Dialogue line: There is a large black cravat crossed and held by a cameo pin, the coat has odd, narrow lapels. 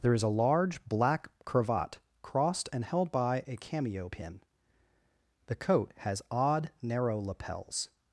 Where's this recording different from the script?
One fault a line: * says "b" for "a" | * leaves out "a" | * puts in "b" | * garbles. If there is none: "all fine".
all fine